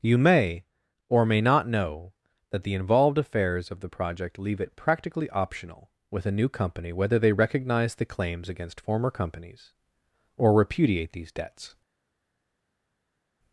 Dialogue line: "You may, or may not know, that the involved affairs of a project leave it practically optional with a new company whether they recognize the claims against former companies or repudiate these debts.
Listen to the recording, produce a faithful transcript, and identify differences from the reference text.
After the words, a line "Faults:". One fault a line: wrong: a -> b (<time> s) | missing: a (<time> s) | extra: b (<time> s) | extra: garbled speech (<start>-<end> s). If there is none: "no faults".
"You may, or may not know, that the involved affairs of the project leave it practically optional with a new company whether they recognize the claims against former companies or repudiate these debts.
Faults:
wrong: a -> the (3.8 s)